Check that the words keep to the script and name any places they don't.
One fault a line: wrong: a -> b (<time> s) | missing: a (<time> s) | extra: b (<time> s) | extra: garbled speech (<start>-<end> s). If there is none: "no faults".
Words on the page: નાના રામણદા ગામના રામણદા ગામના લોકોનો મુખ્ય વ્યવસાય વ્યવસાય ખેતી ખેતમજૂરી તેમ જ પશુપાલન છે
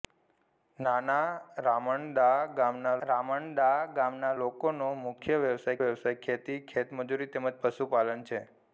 no faults